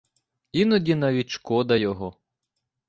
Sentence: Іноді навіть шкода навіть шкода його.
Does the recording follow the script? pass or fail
fail